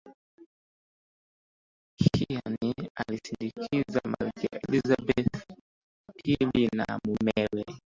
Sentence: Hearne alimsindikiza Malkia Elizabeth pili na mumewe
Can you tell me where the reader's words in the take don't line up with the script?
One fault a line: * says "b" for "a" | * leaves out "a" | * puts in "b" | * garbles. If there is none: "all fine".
all fine